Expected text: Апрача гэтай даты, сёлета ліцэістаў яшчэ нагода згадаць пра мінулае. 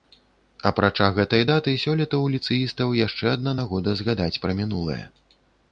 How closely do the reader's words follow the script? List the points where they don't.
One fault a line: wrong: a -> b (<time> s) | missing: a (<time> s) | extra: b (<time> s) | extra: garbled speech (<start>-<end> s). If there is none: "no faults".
extra: ў (2.2 s)
extra: адна (3.4 s)